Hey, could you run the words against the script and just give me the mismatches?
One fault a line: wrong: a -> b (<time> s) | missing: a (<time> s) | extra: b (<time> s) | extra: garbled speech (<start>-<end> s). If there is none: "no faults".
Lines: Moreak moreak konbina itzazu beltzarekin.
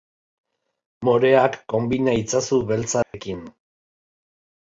missing: moreak (1.6 s)